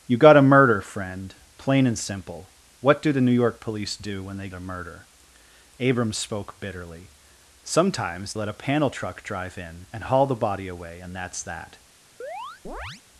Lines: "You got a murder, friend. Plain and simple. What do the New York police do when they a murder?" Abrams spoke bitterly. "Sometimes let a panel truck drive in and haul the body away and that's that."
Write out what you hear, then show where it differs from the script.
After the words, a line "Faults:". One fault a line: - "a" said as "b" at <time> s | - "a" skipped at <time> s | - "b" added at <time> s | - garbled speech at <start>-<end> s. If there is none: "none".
"You got a murder, friend. Plain and simple. What do the New York police do when they a murder?" Abrams spoke bitterly. "Sometimes let a panel truck drive in and haul the body away and that's that."
Faults:
none